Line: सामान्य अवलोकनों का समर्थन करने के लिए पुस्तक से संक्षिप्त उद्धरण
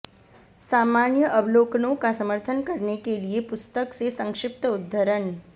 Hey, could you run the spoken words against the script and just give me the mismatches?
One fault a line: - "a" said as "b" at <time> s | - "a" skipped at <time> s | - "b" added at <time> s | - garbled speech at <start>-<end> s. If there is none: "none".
none